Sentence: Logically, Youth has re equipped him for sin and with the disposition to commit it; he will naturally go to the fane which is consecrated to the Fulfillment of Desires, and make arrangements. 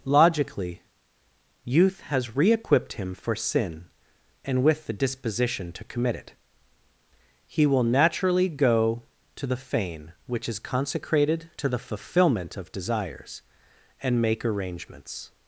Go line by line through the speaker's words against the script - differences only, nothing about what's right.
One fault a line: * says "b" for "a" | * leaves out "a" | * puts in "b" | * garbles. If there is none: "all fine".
all fine